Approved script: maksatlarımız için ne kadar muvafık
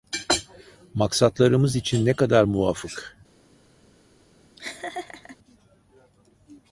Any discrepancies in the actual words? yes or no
no